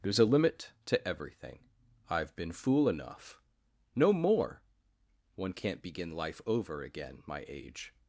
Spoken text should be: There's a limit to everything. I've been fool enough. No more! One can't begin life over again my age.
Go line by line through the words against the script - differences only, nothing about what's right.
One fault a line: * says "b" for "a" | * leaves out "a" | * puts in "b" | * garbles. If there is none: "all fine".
all fine